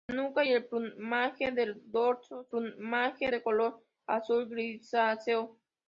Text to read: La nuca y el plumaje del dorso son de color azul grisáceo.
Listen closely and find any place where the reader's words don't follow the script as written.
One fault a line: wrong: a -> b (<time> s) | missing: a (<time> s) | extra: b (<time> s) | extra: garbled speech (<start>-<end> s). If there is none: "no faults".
missing: y (0.4 s)
wrong: son -> plumaje (2.5 s)